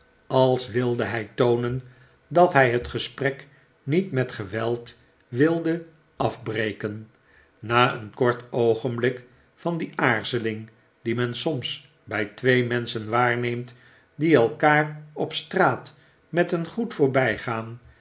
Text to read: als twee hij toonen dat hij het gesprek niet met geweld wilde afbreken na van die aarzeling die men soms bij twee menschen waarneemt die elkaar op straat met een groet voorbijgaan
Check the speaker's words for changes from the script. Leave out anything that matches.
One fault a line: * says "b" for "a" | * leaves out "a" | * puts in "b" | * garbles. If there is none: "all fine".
* says "wilde" for "twee"
* puts in "een kort oogenblik"